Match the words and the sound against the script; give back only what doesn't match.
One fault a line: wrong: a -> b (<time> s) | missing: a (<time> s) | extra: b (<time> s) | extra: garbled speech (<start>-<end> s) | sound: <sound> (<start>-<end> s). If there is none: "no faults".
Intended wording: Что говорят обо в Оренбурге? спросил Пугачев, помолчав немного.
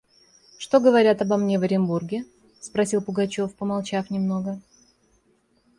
extra: мне (1.4 s)